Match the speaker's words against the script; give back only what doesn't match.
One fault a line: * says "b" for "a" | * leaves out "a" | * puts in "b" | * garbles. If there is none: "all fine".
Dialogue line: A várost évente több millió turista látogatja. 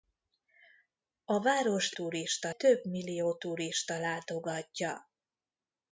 * says "turista" for "évente"